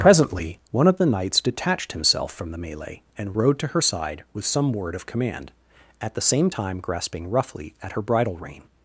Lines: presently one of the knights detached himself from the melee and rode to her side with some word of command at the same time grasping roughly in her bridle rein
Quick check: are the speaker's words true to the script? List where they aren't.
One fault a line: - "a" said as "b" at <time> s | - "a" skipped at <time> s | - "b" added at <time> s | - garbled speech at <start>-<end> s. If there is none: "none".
- "in" said as "at" at 7.8 s